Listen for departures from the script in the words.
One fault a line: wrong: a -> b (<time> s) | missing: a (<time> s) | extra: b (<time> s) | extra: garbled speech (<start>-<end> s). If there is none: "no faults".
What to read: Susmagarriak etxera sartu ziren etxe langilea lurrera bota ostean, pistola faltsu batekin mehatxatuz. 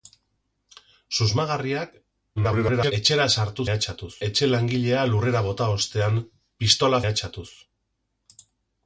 extra: garbled speech (2.4-2.9 s)
wrong: ziren -> mehatxatuz (3.6 s)
missing: faltsu batekin (7.0 s)